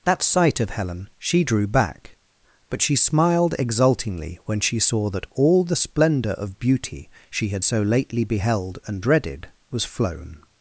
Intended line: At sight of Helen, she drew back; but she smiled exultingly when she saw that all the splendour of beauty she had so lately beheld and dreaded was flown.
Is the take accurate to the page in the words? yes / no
no